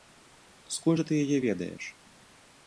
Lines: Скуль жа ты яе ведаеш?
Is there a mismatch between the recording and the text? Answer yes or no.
no